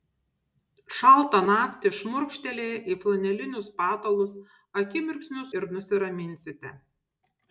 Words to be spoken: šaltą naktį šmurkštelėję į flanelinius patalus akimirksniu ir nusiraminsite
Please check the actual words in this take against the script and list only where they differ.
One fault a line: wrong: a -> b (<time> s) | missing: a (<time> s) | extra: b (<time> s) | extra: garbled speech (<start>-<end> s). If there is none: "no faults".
no faults